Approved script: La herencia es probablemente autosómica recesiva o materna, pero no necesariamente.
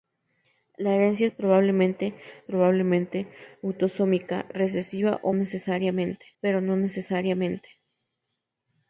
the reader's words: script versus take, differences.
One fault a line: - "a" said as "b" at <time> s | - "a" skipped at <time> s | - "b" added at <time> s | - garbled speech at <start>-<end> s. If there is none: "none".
- "probablemente" added at 2.4 s
- "materna" said as "necesariamente" at 5.3 s